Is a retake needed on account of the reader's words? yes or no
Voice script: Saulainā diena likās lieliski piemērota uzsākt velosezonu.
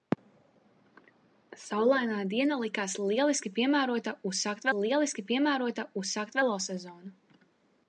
yes